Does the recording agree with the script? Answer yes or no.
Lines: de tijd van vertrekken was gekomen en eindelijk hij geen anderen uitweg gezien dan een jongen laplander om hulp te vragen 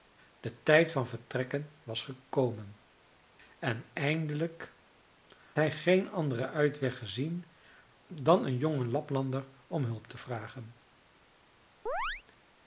yes